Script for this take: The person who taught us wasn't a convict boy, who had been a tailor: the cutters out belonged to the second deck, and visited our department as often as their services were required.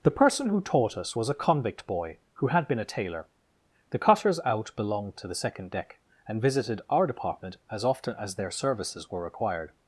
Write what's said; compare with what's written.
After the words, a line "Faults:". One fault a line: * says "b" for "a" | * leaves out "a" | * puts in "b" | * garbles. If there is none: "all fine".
The person who taught us was a convict boy, who had been a tailor: the cutters out belonged to the second deck, and visited our department as often as their services were required.
Faults:
* says "was" for "wasn't"